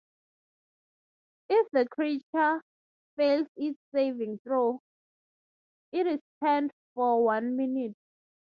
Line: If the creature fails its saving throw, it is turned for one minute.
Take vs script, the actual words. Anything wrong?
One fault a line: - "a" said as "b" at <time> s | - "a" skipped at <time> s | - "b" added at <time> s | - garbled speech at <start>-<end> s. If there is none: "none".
none